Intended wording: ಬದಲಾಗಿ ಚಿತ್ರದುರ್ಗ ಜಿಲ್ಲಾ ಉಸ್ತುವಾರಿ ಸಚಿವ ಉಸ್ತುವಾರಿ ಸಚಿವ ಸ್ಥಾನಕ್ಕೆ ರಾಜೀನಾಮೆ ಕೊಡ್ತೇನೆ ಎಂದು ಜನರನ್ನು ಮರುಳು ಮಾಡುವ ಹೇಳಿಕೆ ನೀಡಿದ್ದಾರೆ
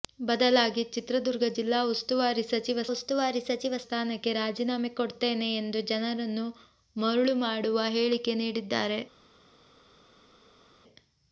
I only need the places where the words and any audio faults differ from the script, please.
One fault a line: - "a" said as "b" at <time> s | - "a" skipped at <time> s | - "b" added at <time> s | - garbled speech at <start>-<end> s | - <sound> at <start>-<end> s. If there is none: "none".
none